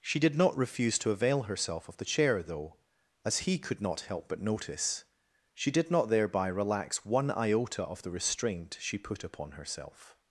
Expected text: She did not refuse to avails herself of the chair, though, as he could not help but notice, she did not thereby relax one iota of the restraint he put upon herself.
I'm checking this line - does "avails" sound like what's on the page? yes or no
no